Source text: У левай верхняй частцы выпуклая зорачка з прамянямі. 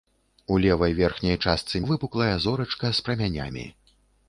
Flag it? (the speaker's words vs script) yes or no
no